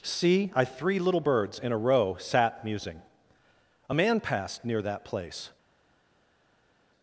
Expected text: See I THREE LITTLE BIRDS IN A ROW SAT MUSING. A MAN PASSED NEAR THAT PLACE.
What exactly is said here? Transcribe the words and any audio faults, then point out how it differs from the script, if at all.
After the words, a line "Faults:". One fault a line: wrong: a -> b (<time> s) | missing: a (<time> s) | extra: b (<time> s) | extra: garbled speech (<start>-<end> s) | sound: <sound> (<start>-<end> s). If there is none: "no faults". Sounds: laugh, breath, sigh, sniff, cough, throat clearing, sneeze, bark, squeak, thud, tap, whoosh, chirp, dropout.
See I THREE LITTLE BIRDS IN A ROW SAT MUSING. A MAN PASSED NEAR THAT PLACE.
Faults:
no faults